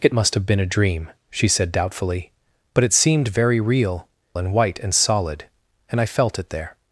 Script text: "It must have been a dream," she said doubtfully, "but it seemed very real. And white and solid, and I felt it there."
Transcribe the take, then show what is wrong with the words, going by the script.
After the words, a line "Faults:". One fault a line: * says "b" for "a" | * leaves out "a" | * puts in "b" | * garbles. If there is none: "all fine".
"It must have been a dream," she said doubtfully, "but it seemed very real. And white and solid, and I felt it there."
Faults:
all fine